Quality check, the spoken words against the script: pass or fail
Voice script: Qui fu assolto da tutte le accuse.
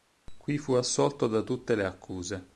pass